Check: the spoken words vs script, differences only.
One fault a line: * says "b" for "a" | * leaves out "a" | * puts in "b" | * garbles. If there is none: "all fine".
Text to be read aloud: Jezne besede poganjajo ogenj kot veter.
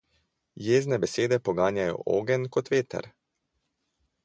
all fine